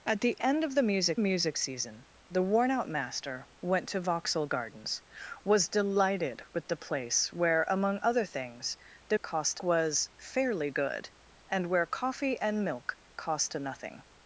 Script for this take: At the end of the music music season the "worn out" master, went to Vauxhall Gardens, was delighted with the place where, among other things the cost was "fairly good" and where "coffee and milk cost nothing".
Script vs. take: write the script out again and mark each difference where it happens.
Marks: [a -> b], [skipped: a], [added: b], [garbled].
At the end of the music music season the "worn out" master, went to Vauxhall Gardens, was delighted with the place where, among other things the cost was "fairly good" and where "coffee and milk cost nothing".